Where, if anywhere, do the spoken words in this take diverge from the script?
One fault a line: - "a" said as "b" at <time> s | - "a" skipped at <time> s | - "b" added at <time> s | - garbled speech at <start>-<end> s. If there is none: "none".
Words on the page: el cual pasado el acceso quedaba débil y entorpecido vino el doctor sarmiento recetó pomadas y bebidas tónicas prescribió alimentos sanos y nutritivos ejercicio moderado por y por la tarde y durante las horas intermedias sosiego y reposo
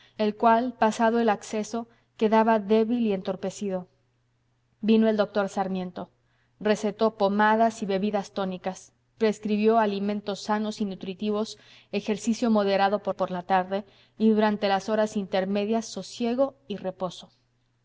none